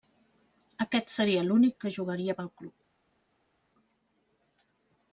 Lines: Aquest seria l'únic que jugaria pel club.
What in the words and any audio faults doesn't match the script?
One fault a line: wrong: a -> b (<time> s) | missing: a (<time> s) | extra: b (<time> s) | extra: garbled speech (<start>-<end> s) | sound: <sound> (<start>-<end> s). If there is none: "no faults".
no faults